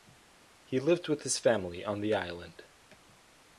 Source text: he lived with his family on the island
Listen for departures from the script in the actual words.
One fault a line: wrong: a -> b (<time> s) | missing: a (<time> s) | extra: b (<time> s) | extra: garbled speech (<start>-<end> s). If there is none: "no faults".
no faults